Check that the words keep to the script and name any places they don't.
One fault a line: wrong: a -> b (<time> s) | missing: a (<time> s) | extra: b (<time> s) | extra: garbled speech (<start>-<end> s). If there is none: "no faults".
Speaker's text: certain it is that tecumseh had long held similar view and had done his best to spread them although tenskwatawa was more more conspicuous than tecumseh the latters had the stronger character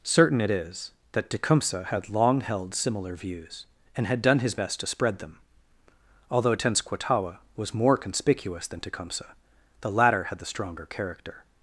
wrong: view -> views (3.1 s)
missing: more (8.0 s)
wrong: latters -> latter (9.9 s)